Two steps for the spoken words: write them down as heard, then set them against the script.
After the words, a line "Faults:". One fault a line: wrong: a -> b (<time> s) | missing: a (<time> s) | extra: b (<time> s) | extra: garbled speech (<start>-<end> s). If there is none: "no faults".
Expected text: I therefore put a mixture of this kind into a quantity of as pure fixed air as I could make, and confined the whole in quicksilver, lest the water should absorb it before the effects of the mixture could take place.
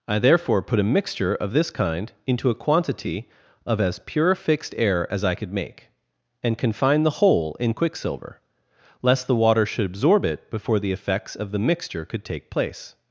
I therefore put a mixture of this kind into a quantity of as pure fixed air as I could make, and confined the whole in quicksilver, lest the water should absorb it before the effects of the mixture could take place.
Faults:
no faults